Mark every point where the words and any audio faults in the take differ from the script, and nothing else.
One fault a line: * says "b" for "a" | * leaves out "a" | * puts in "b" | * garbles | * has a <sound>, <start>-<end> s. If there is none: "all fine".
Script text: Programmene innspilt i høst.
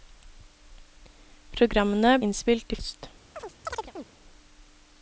* has a chirp, 3.4-4.0 s